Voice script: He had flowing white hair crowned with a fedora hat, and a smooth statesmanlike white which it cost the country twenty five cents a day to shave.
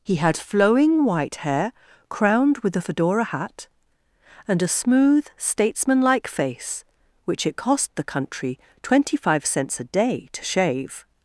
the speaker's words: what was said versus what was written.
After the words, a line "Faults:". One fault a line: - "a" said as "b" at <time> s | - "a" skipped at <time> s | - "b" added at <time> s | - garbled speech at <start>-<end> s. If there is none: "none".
He had flowing white hair crowned with a fedora hat, and a smooth statesmanlike face which it cost the country twenty five cents a day to shave.
Faults:
- "white" said as "face" at 6.3 s